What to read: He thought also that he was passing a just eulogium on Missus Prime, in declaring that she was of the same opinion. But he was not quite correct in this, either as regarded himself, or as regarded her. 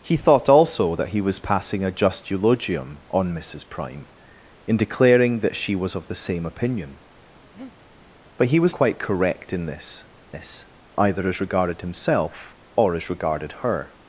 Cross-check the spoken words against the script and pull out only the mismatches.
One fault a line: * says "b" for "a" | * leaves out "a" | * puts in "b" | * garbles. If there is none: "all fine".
* leaves out "not"
* puts in "this"